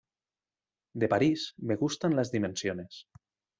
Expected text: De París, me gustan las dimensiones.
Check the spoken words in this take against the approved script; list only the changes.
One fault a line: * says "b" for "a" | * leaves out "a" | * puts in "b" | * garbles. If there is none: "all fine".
all fine